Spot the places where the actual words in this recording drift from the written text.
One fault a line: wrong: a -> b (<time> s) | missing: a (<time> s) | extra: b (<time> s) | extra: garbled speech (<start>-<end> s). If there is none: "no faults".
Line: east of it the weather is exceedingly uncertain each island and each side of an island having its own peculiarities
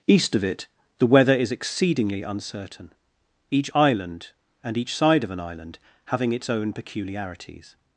no faults